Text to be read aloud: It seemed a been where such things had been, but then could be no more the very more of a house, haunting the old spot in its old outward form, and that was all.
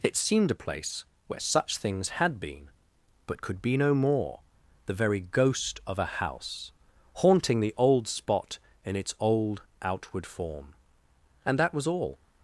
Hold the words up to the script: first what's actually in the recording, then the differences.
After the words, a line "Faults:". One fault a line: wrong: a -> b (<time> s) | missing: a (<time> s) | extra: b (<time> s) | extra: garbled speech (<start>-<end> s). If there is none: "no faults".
It seemed a place where such things had been, but could be no more the very ghost of a house, haunting the old spot in its old outward form, and that was all.
Faults:
wrong: been -> place (0.7 s)
missing: then (3.4 s)
wrong: more -> ghost (5.2 s)